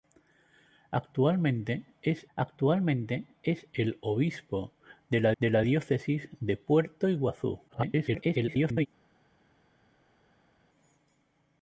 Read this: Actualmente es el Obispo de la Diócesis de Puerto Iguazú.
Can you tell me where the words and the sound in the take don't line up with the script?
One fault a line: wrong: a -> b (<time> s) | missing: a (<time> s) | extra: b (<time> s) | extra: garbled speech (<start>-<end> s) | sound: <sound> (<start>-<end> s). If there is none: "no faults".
extra: actualmente es (2.3 s)
extra: de la (5.4 s)
extra: garbled speech (7.7-8.9 s)